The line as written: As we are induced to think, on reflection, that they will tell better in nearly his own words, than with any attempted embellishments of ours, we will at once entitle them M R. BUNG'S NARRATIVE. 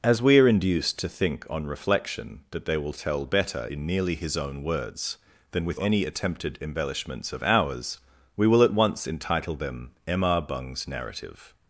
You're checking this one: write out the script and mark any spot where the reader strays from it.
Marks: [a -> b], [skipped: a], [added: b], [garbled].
As we are induced to think, on reflection, that they will tell better in nearly his own words, than with any attempted embellishments of ours, we will at once entitle them M R. BUNG'S NARRATIVE.